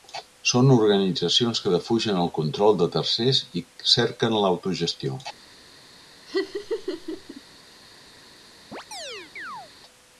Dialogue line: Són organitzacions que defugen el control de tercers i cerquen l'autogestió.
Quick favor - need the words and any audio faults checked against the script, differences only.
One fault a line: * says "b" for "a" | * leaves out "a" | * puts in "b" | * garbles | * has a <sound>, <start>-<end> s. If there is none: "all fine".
* has a laugh, 6.3-7.4 s
* has a chirp, 8.7-9.7 s